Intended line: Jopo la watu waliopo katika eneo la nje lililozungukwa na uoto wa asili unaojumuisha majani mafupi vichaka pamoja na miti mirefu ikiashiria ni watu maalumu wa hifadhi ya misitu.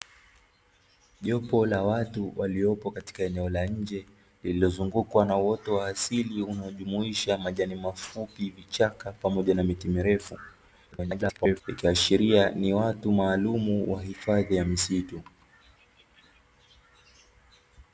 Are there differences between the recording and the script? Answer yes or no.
yes